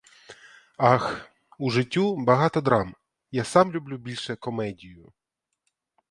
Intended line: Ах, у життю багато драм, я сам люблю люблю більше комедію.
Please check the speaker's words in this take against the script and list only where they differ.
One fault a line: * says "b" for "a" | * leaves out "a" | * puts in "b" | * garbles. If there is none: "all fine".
* leaves out "люблю"